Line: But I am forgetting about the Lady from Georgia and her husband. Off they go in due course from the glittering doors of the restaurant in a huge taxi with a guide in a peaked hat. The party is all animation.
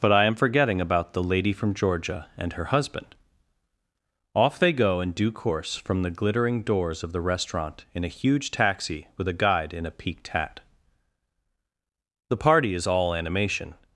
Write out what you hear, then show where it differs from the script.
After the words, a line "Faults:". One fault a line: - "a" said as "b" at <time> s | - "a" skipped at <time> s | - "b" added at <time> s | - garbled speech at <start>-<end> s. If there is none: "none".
But I am forgetting about the Lady from Georgia and her husband. Off they go in due course from the glittering doors of the restaurant in a huge taxi with a guide in a peaked hat. The party is all animation.
Faults:
none